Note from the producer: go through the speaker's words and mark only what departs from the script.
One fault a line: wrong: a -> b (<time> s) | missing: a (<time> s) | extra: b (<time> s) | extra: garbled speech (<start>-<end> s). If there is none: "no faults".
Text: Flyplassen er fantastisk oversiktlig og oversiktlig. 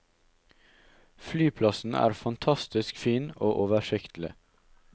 wrong: oversiktlig -> fin (3.0 s)